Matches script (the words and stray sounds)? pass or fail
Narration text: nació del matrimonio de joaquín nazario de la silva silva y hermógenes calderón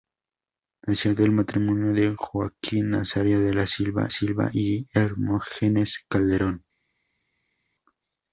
pass